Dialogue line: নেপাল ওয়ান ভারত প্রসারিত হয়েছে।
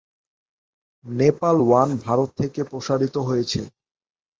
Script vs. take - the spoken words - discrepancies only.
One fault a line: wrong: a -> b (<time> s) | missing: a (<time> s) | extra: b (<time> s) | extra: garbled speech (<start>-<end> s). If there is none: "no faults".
extra: থেকে (2.4 s)